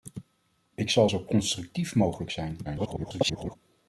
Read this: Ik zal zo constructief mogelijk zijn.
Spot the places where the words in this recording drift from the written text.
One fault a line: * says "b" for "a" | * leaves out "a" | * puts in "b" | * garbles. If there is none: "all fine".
* garbles